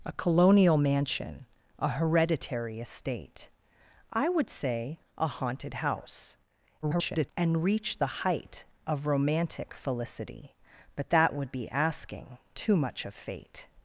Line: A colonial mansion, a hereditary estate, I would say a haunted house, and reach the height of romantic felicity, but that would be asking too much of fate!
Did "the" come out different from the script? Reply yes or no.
no